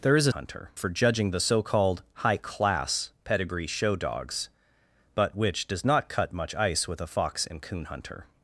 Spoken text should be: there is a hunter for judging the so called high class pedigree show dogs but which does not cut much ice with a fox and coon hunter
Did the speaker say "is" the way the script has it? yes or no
yes